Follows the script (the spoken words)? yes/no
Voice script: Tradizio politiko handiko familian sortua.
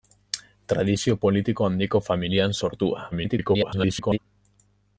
no